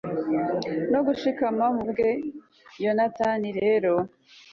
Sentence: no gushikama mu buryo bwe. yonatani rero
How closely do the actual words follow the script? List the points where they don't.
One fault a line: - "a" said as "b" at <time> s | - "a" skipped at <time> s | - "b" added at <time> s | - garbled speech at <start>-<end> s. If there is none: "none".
- "buryo" skipped at 1.8 s